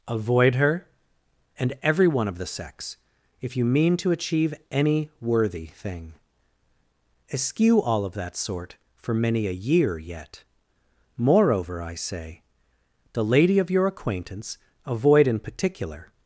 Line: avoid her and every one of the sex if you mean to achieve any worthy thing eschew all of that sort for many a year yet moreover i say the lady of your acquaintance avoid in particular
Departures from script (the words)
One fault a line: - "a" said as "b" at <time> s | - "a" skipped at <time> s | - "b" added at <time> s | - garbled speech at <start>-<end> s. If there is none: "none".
none